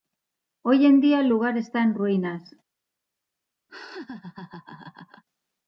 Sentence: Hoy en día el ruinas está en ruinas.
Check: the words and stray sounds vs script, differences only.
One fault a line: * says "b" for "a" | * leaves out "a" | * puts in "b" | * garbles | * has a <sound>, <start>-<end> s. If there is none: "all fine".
* says "lugar" for "ruinas"
* has a laugh, 3.7-5.2 s